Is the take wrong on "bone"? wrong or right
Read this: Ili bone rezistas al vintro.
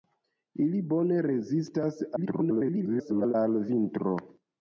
right